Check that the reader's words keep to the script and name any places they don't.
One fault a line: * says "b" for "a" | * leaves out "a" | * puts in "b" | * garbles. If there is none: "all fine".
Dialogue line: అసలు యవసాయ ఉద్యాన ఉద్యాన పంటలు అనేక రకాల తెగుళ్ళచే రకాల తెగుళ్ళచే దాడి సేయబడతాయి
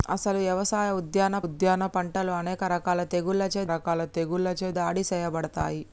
all fine